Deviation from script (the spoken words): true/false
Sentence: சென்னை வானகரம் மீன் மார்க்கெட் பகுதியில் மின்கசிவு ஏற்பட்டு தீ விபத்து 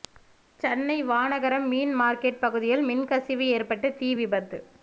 false